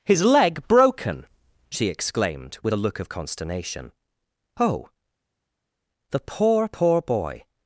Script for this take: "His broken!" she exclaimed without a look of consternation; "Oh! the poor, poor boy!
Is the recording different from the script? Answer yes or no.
yes